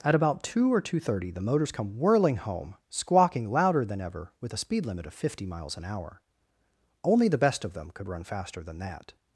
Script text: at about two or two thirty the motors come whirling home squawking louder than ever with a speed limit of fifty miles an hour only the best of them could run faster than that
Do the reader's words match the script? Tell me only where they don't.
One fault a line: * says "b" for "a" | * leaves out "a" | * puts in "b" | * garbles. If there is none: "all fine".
all fine